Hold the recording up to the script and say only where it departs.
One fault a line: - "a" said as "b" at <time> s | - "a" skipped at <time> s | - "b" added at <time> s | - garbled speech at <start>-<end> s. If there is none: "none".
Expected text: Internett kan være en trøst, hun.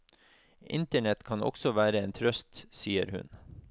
- "også" added at 1.4 s
- "sier" added at 2.7 s